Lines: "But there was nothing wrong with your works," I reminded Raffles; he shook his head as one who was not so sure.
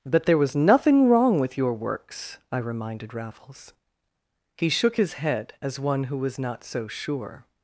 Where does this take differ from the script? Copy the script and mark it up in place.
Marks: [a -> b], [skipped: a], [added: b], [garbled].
"But there was nothing wrong with your works," I reminded Raffles; he shook his head as one who was not so sure.